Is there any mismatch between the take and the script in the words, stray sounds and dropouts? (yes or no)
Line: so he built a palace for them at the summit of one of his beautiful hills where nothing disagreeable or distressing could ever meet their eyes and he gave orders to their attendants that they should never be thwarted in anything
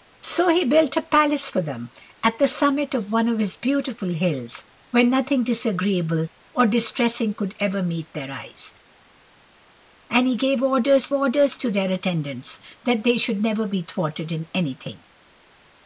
yes